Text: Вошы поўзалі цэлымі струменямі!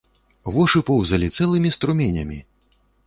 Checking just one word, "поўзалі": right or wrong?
right